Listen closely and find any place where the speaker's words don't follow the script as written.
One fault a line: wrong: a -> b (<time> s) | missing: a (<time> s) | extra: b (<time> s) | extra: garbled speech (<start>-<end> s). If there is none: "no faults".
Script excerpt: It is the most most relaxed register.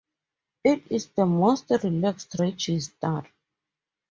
missing: most (1.7 s)